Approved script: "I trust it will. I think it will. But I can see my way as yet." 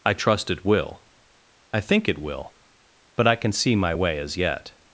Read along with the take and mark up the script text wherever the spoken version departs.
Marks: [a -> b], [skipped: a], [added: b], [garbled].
"I trust it will. I think it will. But I can see my way as yet."